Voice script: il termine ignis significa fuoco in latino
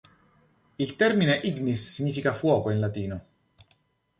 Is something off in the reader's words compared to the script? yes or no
no